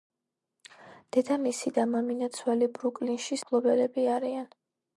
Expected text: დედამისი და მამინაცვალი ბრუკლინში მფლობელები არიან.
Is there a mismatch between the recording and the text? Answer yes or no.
no